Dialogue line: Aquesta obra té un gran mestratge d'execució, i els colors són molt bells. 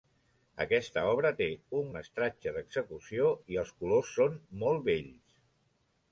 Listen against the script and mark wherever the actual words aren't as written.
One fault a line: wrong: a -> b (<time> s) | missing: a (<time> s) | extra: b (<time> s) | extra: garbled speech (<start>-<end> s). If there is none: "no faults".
missing: gran (1.9 s)